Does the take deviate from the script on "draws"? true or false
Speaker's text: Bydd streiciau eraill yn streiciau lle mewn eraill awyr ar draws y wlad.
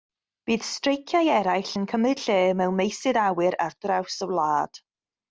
false